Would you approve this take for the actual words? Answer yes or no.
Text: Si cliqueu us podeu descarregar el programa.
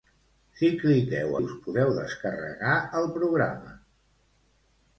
yes